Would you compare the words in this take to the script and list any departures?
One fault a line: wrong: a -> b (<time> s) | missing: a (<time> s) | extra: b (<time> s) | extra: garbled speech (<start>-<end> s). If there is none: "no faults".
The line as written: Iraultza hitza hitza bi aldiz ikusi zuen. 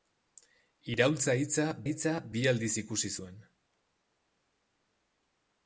no faults